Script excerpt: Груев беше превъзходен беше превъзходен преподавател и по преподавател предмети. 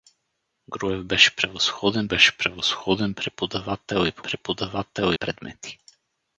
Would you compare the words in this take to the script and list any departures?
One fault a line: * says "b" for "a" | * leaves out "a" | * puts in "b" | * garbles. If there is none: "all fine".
all fine